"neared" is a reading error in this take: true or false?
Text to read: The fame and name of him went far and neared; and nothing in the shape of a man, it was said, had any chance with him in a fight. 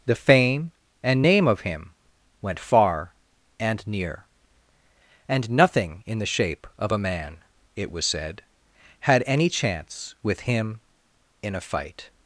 true